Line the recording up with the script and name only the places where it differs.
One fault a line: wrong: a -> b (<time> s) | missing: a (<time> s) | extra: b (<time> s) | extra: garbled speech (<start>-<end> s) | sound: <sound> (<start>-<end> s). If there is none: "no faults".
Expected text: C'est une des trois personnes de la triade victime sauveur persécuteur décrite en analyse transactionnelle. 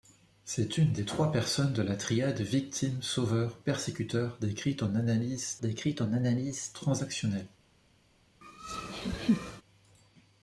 extra: décrite en analyse (5.6 s)
sound: laugh (8.4-9.6 s)